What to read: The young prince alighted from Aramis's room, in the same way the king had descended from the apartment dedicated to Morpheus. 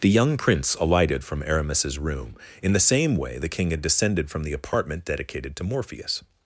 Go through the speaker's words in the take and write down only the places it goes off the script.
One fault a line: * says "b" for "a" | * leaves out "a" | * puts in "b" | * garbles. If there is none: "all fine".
all fine